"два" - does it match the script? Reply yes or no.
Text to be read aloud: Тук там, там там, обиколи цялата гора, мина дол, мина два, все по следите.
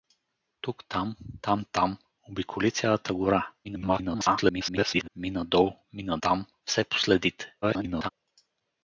no